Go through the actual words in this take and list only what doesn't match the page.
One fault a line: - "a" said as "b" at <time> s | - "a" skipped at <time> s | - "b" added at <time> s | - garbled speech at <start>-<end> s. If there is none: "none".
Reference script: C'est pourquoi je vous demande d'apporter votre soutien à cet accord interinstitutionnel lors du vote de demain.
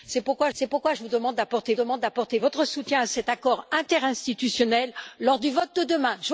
- "c'est pourquoi" added at 0.5 s
- "demande d'apporter" added at 1.7 s